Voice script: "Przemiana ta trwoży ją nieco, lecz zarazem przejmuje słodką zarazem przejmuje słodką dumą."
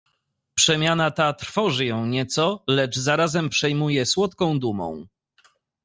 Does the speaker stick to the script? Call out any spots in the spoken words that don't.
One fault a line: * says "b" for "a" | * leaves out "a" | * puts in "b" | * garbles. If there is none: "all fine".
* leaves out "zarazem przejmuje słodką"